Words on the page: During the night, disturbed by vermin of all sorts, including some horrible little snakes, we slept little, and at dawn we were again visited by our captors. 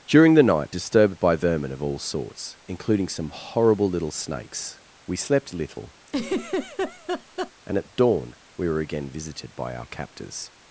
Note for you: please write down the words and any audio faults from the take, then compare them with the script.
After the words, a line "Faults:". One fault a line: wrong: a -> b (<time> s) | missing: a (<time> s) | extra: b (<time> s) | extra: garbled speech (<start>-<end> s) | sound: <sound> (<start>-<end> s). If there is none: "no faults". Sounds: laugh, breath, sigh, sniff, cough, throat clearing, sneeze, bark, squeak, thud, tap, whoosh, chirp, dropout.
During the night, disturbed by vermin of all sorts, including some horrible little snakes, we slept little, and at dawn we were again visited by our captors.
Faults:
sound: laugh (6.1-7.5 s)